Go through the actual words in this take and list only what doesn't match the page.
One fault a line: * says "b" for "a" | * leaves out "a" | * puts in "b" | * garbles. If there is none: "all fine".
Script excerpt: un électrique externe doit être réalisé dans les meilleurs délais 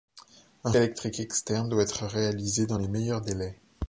all fine